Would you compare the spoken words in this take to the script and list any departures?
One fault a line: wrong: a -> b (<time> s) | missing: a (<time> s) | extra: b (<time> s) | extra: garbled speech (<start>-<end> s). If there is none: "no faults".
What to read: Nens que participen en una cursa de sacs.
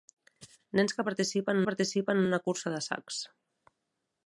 extra: participen (1.7 s)